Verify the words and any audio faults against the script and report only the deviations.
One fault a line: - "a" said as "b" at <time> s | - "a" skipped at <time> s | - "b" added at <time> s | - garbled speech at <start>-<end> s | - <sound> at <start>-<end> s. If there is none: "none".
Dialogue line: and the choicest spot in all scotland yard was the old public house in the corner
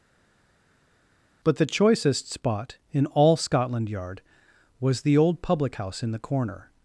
- "and" said as "but" at 1.4 s